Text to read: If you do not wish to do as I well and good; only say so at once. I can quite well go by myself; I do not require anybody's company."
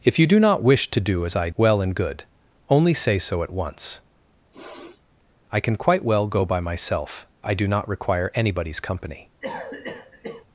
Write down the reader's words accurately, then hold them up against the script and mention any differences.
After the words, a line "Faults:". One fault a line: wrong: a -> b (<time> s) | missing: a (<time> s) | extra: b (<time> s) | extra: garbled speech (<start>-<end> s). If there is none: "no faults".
If you do not wish to do as I well and good; only say so at once. I can quite well go by myself; I do not require anybody's company."
Faults:
no faults